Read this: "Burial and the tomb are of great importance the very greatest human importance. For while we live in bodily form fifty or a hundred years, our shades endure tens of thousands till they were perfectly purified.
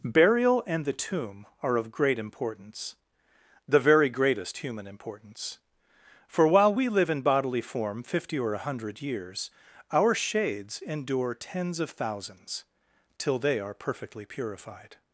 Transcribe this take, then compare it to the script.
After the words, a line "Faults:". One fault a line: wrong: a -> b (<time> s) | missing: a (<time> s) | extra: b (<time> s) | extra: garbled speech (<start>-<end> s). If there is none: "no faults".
"Burial and the tomb are of great importance the very greatest human importance. For while we live in bodily form fifty or a hundred years, our shades endure tens of thousands till they are perfectly purified.
Faults:
wrong: were -> are (13.6 s)